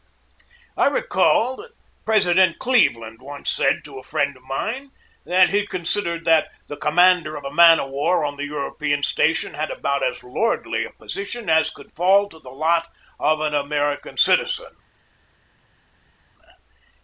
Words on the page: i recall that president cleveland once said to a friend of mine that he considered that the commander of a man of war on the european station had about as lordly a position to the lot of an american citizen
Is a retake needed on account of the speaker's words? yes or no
yes